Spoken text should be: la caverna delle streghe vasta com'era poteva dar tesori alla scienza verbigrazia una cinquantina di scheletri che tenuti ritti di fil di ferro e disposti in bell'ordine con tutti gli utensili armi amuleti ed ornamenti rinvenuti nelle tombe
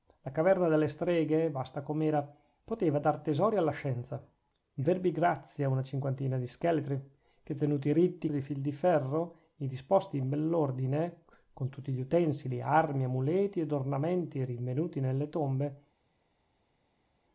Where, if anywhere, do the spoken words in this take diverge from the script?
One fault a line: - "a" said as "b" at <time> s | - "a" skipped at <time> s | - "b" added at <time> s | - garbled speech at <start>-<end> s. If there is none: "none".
none